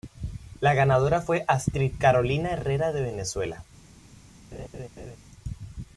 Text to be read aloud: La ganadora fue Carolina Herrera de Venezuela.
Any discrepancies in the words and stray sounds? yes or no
yes